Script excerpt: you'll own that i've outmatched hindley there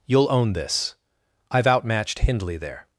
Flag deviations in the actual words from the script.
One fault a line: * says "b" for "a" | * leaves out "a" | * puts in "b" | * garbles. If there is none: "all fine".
* says "this" for "that"